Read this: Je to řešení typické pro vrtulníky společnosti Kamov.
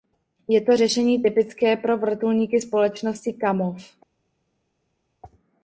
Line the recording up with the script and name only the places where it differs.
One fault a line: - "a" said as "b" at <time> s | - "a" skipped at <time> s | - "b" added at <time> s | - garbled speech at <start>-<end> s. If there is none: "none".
none